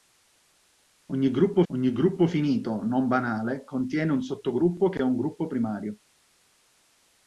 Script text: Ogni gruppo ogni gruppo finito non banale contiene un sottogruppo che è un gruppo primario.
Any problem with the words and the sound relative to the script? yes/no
no